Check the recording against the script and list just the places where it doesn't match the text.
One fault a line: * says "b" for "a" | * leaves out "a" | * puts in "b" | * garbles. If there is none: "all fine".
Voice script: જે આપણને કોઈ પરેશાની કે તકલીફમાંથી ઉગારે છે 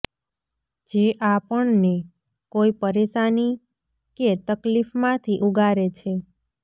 all fine